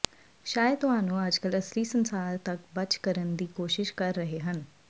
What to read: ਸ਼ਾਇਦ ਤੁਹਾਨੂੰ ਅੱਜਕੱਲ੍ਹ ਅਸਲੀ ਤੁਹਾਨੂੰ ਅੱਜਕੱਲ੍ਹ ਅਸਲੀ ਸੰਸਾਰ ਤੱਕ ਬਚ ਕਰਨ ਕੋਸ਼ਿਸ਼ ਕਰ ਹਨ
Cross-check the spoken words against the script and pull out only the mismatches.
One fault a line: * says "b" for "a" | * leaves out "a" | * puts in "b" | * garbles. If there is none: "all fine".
* leaves out "ਤੁਹਾਨੂੰ ਅੱਜਕੱਲ੍ਹ ਅਸਲੀ"
* puts in "ਦੀ"
* puts in "ਰਹੇ"